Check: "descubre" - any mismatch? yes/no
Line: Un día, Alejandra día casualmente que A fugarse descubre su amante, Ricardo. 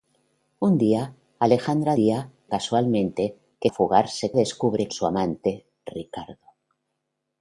no